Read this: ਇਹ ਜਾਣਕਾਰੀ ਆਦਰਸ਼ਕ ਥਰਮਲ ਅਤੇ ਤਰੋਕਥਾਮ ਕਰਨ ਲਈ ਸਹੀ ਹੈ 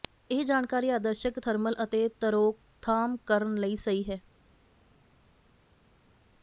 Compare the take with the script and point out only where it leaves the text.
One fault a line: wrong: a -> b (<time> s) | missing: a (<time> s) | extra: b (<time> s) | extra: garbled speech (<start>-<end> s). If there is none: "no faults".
no faults